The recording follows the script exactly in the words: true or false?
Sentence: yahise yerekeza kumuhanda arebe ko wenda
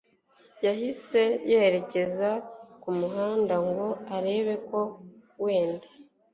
false